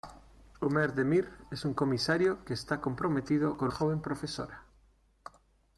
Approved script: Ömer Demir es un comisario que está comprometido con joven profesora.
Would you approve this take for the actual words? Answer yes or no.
yes